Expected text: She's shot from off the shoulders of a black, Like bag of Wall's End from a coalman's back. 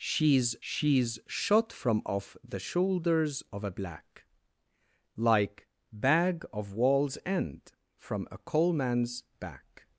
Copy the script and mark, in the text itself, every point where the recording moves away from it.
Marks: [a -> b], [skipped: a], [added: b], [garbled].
She's [added: she's] shot from off the shoulders of a black, Like bag of Wall's End from a coalman's back.